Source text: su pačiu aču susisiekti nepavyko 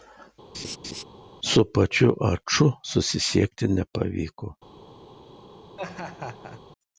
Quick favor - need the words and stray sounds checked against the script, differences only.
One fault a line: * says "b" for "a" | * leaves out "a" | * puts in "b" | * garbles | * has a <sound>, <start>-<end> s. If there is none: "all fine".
* has a laugh, 0.5-1.0 s
* has a laugh, 5.8-6.6 s